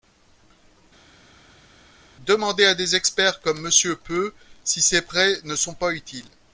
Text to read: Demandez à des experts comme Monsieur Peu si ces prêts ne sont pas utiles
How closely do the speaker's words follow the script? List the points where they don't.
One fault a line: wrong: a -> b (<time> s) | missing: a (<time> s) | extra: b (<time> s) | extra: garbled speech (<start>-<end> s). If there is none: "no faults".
no faults